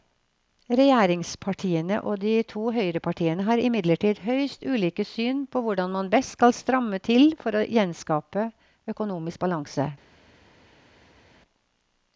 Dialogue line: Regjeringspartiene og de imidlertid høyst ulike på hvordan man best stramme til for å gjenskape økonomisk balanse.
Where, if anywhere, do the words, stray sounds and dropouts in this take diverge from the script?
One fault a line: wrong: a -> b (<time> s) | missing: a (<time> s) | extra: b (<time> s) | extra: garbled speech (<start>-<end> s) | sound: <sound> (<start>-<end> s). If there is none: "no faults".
extra: to høyrepartiene har (2.5 s)
extra: syn (5.1 s)
extra: skal (6.4 s)